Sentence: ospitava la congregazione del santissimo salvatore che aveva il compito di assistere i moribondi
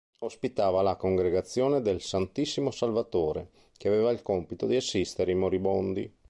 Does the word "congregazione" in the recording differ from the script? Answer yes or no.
no